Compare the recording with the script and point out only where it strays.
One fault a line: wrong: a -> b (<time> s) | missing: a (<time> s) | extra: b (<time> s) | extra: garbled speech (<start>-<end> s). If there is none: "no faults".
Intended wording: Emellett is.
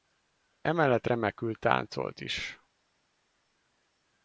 extra: remekül táncolt (1.1 s)